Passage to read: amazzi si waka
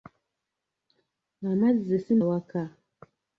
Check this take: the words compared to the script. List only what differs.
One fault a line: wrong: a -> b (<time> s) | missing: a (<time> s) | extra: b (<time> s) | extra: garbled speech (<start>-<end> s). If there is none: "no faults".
no faults